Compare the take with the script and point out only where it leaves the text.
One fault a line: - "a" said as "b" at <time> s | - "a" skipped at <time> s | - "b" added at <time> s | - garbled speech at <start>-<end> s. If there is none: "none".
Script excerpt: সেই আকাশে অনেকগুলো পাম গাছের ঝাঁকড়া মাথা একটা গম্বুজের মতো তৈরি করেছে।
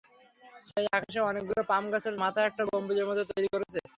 - "ঝাঁকড়া" skipped at 2.1 s